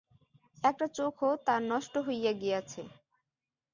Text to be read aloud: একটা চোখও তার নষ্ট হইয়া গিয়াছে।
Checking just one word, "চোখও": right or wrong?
right